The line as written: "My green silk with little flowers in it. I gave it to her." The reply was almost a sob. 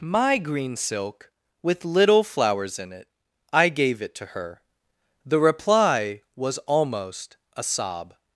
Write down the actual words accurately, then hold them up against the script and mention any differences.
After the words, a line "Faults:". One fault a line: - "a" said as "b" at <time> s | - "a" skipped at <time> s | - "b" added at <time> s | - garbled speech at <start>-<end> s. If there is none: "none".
"My green silk with little flowers in it. I gave it to her." The reply was almost a sob.
Faults:
none